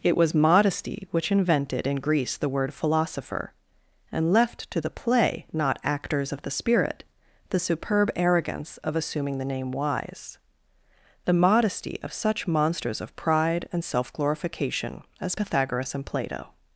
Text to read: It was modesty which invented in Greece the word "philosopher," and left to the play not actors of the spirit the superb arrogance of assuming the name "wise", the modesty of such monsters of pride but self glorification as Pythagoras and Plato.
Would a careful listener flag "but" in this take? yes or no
yes